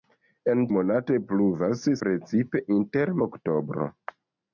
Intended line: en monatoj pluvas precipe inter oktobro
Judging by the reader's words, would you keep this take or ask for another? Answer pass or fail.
pass